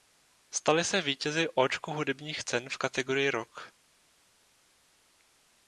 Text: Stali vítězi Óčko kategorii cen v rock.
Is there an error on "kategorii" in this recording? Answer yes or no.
yes